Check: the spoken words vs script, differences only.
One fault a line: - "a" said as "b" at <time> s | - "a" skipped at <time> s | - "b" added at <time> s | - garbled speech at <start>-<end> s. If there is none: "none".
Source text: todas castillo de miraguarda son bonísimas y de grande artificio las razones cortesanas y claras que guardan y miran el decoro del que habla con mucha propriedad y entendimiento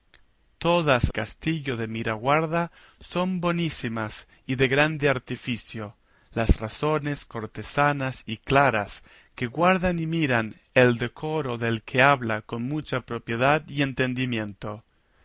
none